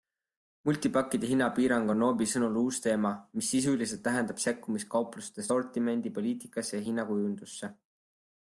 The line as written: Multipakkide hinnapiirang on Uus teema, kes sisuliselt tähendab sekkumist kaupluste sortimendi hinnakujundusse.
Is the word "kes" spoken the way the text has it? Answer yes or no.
no